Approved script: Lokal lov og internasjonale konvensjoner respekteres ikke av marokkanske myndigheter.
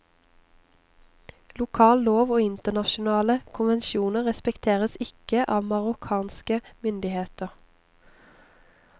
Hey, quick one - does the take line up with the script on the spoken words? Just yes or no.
yes